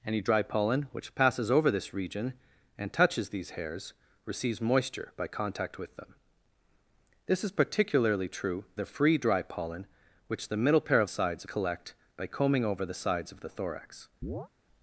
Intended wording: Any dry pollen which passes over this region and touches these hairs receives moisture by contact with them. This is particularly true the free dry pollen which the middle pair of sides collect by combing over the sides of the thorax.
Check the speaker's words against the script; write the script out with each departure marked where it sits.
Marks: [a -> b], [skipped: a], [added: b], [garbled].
Any dry pollen which passes over this region and touches these hairs receives moisture by contact with them. This is particularly true the free dry pollen which the middle pair of sides collect by combing over the sides of the thorax.